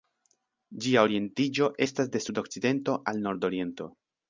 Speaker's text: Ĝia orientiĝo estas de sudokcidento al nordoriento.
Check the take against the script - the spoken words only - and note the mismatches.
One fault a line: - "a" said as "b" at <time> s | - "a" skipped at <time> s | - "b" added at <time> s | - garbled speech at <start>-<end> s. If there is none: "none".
none